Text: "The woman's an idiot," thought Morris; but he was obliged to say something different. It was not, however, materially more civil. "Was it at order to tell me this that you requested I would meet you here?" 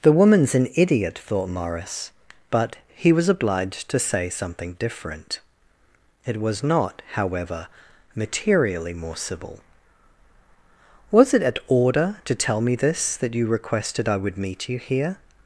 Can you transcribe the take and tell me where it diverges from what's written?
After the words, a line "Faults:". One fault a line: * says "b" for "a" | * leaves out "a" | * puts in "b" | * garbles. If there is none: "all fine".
"The woman's an idiot," thought Morris; but he was obliged to say something different. It was not, however, materially more civil. "Was it at order to tell me this that you requested I would meet you here?"
Faults:
all fine